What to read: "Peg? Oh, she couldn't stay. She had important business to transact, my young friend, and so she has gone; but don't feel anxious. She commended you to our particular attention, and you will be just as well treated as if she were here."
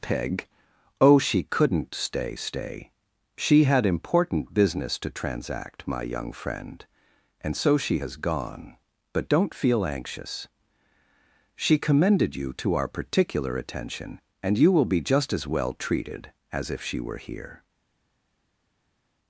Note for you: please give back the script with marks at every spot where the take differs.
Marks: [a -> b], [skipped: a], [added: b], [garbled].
"Peg? Oh, she couldn't stay. [added: stay] She had important business to transact, my young friend, and so she has gone; but don't feel anxious. She commended you to our particular attention, and you will be just as well treated as if she were here."